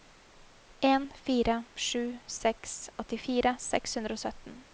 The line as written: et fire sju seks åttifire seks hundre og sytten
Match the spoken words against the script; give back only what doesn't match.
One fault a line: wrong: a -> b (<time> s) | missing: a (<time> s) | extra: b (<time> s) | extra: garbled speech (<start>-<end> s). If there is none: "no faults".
wrong: et -> en (0.8 s)